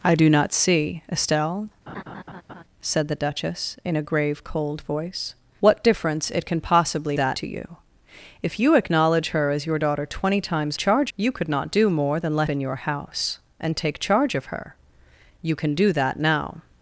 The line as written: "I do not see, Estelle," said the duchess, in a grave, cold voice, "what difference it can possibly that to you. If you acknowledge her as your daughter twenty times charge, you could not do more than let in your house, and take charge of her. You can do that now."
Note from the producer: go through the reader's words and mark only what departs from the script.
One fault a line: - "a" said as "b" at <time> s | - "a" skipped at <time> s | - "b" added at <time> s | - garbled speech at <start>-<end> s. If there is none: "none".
none